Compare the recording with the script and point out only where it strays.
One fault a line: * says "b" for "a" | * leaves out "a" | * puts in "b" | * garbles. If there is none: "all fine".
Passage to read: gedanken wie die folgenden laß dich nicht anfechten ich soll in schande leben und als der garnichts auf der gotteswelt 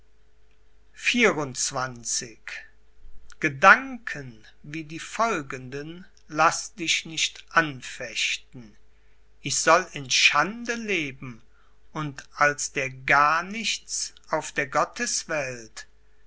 all fine